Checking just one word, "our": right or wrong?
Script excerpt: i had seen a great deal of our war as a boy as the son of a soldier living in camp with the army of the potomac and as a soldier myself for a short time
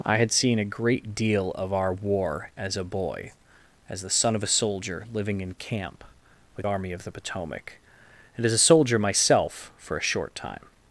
right